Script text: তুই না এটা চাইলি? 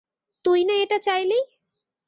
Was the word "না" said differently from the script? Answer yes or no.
no